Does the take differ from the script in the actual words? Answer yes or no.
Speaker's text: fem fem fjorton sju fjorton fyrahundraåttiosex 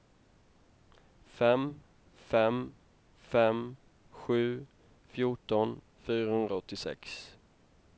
yes